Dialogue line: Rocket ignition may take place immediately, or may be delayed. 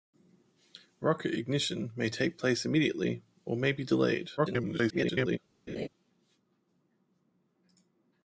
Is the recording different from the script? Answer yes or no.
yes